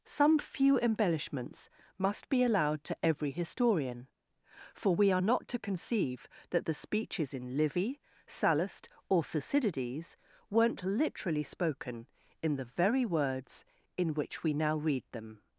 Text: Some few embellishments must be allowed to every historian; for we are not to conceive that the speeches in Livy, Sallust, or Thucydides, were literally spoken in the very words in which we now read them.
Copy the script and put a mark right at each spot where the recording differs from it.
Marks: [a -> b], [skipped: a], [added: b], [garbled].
Some few embellishments must be allowed to every historian; for we are not to conceive that the speeches in Livy, Sallust, or Thucydides, [were -> weren't] literally spoken in the very words in which we now read them.